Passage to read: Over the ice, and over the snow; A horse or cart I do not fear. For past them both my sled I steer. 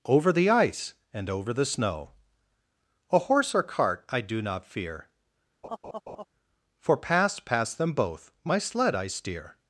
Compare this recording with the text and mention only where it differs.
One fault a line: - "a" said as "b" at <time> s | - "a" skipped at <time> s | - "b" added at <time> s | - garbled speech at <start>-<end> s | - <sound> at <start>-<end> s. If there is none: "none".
- laugh at 5.6-6.3 s
- "past" added at 7.4 s